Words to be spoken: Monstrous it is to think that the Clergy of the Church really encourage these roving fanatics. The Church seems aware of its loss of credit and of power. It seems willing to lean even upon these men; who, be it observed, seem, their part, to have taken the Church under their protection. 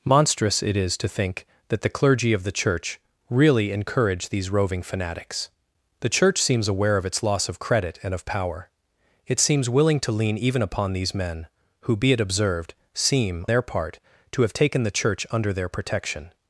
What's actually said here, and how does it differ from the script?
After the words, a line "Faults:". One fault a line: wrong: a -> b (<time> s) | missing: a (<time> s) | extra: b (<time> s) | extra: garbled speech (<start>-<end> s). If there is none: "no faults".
Monstrous it is to think that the Clergy of the Church really encourage these roving fanatics. The Church seems aware of its loss of credit and of power. It seems willing to lean even upon these men; who, be it observed, seem, their part, to have taken the Church under their protection.
Faults:
no faults